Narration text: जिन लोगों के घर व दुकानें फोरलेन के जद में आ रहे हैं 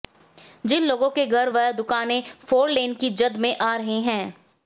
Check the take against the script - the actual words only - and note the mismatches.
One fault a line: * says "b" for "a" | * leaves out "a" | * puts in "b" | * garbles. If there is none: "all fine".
* says "की" for "के"